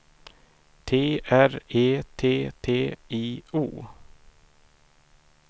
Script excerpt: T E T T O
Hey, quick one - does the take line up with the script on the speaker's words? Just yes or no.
no